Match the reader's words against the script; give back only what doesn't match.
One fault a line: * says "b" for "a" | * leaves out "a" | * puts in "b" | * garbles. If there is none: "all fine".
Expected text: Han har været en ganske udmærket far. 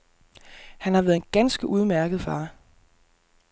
all fine